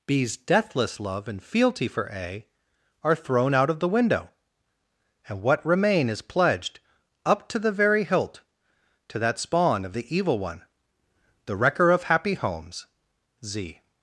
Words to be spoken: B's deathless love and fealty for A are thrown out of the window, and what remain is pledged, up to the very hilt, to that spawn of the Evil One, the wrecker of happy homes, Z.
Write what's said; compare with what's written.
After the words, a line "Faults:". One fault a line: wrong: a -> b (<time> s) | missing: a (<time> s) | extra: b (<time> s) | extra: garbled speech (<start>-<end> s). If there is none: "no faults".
B's deathless love and fealty for A are thrown out of the window, and what remain is pledged, up to the very hilt, to that spawn of the Evil One, the wrecker of happy homes, Z.
Faults:
no faults